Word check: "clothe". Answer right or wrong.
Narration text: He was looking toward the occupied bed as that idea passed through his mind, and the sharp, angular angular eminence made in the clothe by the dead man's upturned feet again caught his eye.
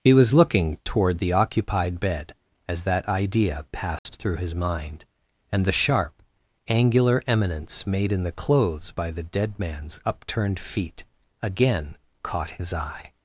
wrong